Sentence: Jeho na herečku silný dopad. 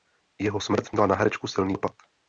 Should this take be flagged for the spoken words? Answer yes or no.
yes